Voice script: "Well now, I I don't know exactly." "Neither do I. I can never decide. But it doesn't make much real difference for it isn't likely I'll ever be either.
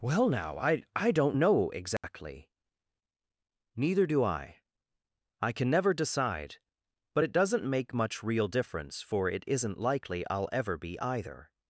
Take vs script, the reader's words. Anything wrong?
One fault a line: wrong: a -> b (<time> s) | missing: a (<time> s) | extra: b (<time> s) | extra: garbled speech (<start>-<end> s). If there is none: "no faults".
no faults